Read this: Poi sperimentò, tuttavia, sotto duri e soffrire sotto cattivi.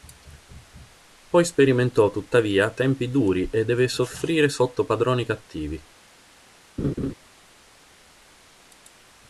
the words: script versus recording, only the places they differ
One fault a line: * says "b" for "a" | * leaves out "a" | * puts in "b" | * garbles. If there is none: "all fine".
* says "tempi" for "sotto"
* puts in "deve"
* puts in "padroni"